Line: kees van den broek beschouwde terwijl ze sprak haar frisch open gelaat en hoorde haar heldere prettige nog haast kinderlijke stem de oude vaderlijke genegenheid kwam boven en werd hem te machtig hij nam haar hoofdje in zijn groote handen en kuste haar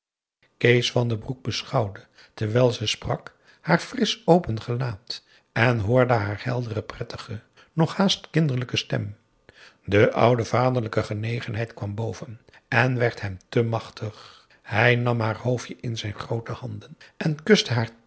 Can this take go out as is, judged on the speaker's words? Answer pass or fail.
pass